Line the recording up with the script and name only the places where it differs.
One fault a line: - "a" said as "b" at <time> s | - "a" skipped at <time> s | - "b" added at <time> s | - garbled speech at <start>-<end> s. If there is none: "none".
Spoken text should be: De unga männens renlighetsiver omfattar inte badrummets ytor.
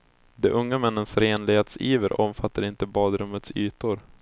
none